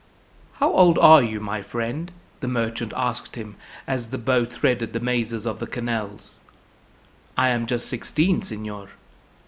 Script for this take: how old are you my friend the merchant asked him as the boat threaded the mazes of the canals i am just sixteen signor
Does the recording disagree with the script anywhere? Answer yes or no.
no